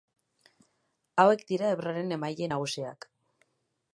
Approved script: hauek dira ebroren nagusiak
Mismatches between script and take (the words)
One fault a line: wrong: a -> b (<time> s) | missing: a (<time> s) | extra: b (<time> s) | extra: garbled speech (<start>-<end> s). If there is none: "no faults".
extra: emaile (2.2 s)